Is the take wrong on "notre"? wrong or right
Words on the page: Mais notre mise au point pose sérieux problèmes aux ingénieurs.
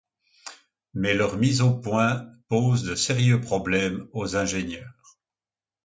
wrong